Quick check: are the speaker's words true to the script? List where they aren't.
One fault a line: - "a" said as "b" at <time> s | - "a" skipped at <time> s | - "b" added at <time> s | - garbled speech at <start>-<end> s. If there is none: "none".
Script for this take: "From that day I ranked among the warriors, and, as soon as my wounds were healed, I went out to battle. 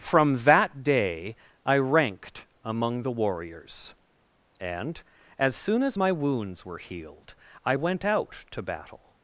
none